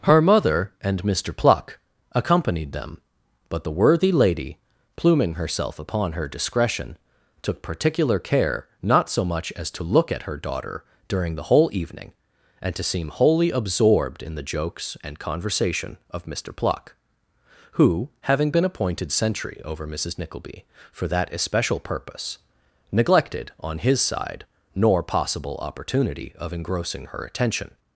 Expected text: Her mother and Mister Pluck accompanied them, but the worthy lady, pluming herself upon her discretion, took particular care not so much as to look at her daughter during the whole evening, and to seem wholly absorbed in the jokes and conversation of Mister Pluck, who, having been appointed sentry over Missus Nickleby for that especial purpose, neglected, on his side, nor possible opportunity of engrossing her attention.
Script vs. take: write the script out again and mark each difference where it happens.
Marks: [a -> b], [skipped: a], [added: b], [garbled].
Her mother and Mister Pluck accompanied them, but the worthy lady, pluming herself upon her discretion, took particular care not so much as to look at her daughter during the whole evening, and to seem wholly absorbed in the jokes and conversation of Mister Pluck, who, having been appointed sentry over Missus Nickleby for that especial purpose, neglected, on his side, nor possible opportunity of engrossing her attention.